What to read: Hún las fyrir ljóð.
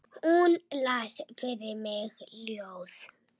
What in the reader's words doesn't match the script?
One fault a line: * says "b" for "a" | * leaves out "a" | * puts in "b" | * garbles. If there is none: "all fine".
* puts in "mig"